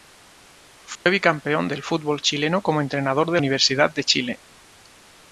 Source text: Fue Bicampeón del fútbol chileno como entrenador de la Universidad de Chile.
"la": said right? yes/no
no